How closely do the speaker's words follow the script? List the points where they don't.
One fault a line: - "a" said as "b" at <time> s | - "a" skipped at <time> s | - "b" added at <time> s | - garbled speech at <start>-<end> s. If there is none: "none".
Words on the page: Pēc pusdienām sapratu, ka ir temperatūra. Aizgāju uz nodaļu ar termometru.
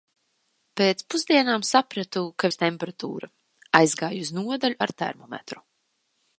none